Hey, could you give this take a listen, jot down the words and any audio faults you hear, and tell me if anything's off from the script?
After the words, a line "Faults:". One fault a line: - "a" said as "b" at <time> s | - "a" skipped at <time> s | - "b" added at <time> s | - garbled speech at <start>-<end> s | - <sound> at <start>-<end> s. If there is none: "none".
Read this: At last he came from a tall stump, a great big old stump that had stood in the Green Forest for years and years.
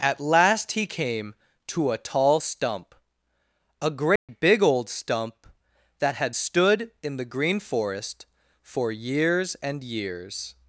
At last he came to a tall stump, a great big old stump that had stood in the Green Forest for years and years.
Faults:
- "from" said as "to" at 1.7 s
- dropout at 4.2-4.3 s